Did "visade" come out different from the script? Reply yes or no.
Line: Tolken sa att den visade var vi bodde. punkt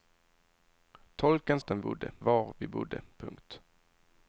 yes